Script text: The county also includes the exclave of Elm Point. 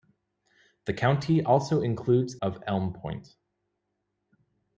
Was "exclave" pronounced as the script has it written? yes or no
no